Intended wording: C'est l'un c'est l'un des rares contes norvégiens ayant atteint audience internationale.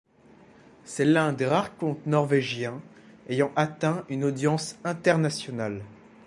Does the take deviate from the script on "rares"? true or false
false